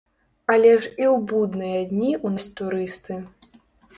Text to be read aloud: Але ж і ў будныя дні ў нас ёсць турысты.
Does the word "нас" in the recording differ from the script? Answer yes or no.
yes